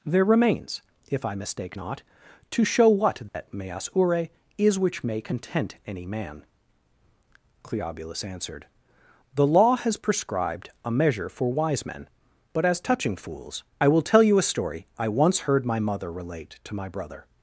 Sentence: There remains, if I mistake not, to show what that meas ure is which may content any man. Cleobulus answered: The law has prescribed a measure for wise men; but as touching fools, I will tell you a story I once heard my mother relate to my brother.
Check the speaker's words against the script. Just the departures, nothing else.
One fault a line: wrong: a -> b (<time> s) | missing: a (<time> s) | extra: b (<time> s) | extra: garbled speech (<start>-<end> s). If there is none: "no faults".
no faults